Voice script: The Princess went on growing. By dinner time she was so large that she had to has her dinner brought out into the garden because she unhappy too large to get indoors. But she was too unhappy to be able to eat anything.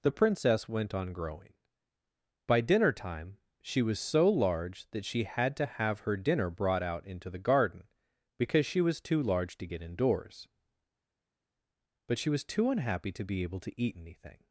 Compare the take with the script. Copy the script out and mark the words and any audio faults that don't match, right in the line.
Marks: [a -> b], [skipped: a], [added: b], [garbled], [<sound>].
The Princess went on growing. By dinner time she was so large that she had to [has -> have] her dinner brought out into the garden because she [unhappy -> was] too large to get indoors. But she was too unhappy to be able to eat anything.